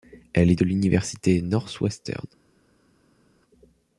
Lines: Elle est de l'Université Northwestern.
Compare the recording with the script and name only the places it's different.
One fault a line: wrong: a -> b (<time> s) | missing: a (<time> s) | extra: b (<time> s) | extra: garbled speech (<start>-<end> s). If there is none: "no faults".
no faults